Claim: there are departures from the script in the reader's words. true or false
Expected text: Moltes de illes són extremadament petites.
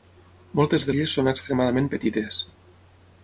false